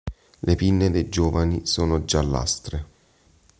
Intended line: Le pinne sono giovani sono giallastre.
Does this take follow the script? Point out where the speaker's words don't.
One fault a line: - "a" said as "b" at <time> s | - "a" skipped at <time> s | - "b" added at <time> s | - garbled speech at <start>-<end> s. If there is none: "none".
- "sono" said as "dei" at 0.9 s